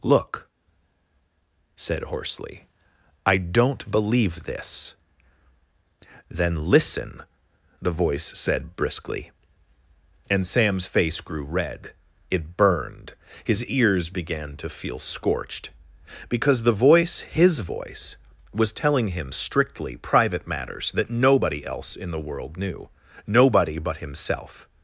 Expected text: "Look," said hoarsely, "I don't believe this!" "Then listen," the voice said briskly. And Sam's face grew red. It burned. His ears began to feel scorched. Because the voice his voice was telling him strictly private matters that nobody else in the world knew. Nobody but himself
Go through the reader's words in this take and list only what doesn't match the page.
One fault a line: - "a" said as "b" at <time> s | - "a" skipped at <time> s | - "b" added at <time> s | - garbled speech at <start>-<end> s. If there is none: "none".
none